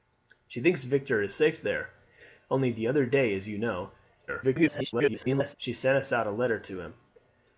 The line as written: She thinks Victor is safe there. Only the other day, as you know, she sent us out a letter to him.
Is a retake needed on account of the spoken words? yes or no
yes